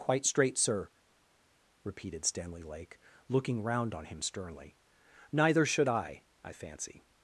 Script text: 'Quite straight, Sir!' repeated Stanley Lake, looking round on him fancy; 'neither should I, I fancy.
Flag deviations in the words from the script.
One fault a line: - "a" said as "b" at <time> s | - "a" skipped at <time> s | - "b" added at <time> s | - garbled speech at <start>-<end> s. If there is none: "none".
- "fancy" said as "sternly" at 4.2 s